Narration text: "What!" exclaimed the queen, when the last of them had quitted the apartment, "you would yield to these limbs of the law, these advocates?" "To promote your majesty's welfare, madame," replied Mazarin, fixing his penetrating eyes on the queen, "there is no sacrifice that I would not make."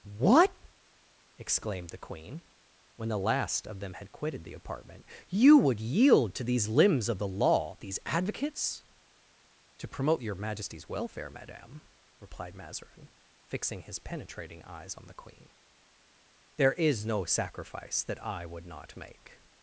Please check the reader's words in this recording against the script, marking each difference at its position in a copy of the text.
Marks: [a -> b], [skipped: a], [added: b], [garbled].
"What!" exclaimed the queen, when the last of them had quitted the apartment, "you would yield to these limbs of the law, these advocates?" "To promote your majesty's welfare, madame," replied Mazarin, fixing his penetrating eyes on the queen, "there is no sacrifice that I would not make."